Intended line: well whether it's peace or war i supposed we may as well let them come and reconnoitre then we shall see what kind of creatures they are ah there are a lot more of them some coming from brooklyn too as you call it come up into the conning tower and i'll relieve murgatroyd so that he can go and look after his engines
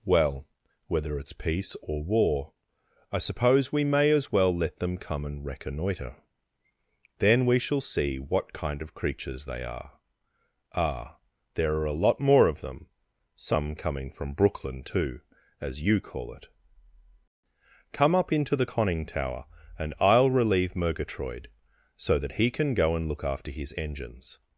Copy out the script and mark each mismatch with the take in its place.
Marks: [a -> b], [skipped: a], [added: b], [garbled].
well whether it's peace or war i [supposed -> suppose] we may as well let them come and reconnoitre then we shall see what kind of creatures they are ah there are a lot more of them some coming from brooklyn too as you call it come up into the conning tower and i'll relieve murgatroyd so that he can go and look after his engines